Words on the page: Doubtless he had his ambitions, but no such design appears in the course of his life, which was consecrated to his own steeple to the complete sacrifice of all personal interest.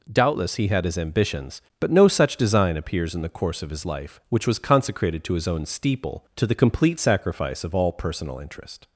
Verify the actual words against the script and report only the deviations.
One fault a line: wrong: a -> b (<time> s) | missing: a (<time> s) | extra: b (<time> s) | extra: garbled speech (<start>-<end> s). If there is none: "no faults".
no faults